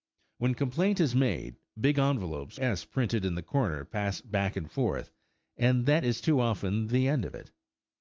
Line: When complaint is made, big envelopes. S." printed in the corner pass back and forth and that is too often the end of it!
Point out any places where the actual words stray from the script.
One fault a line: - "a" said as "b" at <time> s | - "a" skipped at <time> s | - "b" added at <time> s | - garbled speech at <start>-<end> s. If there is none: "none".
none